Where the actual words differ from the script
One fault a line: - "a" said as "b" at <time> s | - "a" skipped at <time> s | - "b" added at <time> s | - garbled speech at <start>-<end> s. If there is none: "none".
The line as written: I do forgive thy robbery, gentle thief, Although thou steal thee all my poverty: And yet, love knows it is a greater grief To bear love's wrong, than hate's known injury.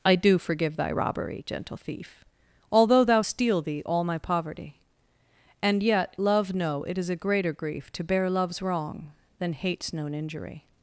- "knows" said as "know" at 6.5 s